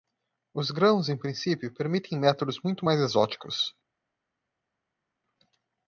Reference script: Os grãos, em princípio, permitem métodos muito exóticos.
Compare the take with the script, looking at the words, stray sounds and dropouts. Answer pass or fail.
fail